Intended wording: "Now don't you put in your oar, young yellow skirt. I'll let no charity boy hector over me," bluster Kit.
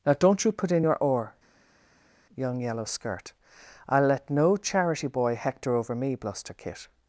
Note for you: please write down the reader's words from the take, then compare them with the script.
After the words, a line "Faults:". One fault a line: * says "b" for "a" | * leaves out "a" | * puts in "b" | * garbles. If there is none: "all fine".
"Now don't you put in your oar, young yellow skirt. I'll let no charity boy hector over me," bluster Kit.
Faults:
all fine